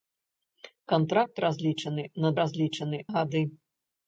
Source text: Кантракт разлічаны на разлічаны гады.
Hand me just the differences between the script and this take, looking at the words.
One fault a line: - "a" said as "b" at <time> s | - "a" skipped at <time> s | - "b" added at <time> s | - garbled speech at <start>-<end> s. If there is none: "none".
none